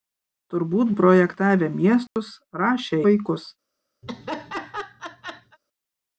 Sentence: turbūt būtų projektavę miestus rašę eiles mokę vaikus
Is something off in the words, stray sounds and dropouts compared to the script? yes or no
yes